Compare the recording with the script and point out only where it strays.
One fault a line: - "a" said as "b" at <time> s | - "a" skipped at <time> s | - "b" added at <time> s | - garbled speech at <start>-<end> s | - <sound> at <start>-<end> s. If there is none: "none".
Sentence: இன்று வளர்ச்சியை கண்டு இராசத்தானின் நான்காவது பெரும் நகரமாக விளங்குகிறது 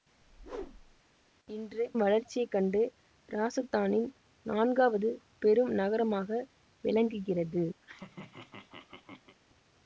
- whoosh at 0.2-1.0 s
- laugh at 7.8-9.4 s